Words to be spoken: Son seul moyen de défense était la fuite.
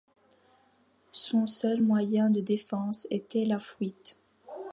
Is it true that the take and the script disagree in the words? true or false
false